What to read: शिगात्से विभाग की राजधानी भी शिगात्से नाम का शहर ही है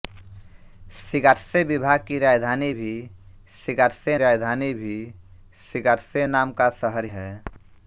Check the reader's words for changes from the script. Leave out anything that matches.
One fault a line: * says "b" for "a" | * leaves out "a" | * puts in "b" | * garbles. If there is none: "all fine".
* puts in "राजधानी भी शिगात्से"
* leaves out "ही"